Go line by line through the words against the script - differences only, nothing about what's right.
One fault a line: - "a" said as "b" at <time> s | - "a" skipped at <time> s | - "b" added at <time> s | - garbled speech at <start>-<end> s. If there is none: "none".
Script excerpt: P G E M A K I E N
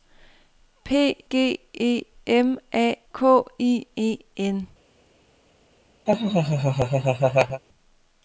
none